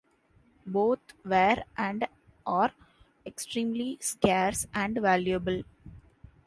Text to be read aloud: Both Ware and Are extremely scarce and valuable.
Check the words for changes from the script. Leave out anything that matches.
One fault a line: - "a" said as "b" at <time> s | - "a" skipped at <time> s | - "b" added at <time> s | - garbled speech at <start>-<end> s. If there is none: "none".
none